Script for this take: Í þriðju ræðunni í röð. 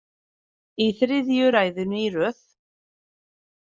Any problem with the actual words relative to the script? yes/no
no